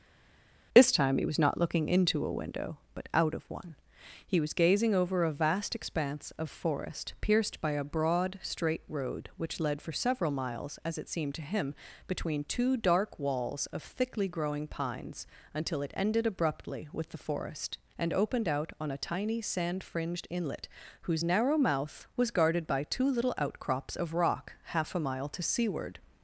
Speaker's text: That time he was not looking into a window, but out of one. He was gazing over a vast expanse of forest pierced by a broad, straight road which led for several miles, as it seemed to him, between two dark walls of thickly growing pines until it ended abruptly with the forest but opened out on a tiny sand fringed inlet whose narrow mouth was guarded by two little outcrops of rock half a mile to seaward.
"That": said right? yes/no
no